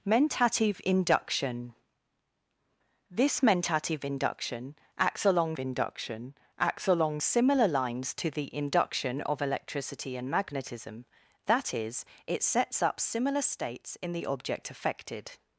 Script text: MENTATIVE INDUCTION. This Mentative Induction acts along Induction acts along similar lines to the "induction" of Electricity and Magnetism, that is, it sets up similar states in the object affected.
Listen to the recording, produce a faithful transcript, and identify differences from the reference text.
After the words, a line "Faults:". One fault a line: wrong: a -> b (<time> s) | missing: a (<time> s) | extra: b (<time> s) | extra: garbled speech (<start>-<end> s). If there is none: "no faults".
MENTATIVE INDUCTION. This Mentative Induction acts along Induction acts along similar lines to the "induction" of Electricity and Magnetism, that is, it sets up similar states in the object affected.
Faults:
no faults